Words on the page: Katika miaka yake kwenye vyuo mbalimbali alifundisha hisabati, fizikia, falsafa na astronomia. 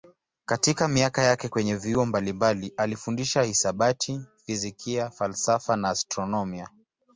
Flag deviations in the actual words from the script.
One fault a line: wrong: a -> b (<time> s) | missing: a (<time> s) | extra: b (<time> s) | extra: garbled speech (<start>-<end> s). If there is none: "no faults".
no faults